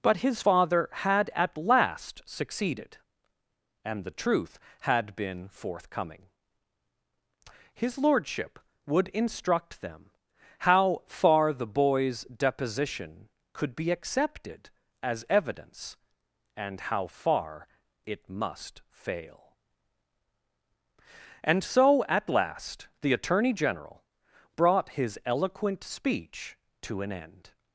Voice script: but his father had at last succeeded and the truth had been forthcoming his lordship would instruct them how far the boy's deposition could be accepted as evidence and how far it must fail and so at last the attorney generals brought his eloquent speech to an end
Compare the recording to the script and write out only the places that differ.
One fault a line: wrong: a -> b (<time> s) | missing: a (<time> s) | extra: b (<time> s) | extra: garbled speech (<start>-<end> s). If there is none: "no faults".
wrong: generals -> general (23.5 s)